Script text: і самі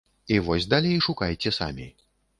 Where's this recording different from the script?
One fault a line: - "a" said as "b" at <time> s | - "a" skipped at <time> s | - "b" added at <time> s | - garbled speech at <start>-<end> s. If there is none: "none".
- "вось далей шукайце" added at 0.5 s